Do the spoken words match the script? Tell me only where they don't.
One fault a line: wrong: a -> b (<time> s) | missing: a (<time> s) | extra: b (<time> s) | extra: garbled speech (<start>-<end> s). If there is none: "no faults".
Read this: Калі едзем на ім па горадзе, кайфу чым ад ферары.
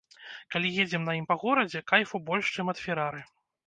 extra: больш (2.3 s)